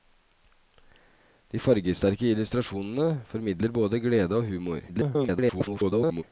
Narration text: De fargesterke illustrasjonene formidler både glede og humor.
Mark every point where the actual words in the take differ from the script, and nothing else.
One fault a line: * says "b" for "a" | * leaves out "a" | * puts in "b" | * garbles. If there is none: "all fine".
* garbles